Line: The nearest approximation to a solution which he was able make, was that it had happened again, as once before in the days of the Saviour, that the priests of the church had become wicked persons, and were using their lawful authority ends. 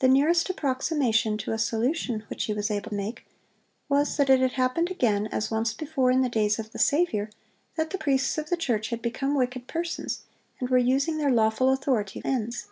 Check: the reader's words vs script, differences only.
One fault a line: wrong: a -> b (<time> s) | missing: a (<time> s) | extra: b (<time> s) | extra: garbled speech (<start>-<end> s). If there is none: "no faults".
no faults